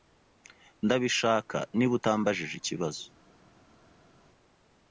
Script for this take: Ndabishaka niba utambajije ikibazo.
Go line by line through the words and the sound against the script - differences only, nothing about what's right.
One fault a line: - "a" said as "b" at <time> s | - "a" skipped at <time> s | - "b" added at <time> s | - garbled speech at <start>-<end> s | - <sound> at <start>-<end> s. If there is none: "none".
none